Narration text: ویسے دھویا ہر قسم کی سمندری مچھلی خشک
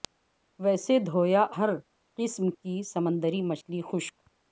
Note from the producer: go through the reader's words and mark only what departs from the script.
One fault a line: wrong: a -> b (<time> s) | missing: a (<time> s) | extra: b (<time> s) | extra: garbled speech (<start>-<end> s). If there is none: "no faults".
no faults